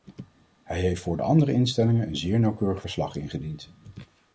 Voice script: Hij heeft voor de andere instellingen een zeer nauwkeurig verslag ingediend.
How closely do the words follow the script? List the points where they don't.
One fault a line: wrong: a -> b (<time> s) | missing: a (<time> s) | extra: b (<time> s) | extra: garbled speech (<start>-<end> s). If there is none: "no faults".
no faults